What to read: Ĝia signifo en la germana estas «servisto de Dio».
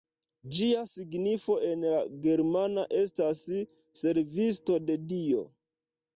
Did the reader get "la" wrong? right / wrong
right